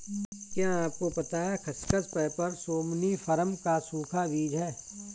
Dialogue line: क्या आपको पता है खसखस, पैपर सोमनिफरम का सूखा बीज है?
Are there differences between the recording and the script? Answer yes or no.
no